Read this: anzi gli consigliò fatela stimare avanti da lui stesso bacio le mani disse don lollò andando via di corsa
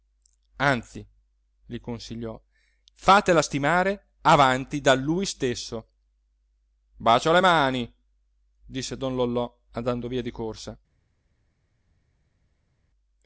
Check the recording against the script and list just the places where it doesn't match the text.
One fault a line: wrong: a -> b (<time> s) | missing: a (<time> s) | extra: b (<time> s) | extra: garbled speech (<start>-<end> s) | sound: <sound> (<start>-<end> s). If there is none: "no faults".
no faults